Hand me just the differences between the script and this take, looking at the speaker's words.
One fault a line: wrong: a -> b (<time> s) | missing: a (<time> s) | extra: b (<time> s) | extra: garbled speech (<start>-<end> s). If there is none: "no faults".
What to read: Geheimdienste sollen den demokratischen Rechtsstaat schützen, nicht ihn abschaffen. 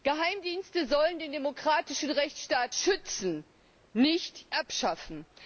missing: ihn (4.5 s)